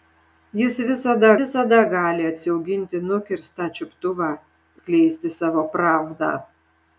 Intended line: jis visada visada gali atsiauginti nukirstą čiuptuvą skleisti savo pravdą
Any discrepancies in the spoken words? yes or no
no